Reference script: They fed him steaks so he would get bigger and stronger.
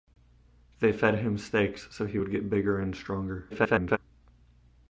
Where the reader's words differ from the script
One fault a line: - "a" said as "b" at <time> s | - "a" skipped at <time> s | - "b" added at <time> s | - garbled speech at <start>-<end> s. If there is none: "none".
- garbled speech at 3.5-4.0 s